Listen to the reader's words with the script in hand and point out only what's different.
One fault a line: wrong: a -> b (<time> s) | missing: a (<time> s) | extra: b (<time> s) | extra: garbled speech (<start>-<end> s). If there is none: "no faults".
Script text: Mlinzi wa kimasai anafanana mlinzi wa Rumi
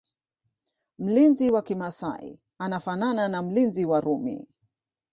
extra: na (3.3 s)